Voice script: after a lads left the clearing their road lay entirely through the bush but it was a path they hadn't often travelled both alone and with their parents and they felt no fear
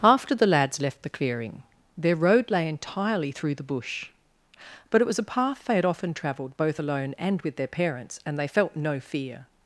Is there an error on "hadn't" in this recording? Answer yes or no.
yes